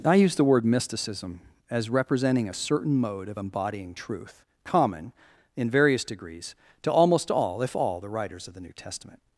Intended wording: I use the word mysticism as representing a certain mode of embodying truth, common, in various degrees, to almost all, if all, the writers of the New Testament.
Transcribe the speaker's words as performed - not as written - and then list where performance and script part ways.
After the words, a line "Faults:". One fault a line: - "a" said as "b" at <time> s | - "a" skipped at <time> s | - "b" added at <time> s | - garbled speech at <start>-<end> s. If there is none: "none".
I use the word mysticism as representing a certain mode of embodying truth, common, in various degrees, to almost all, if all, the writers of the New Testament.
Faults:
none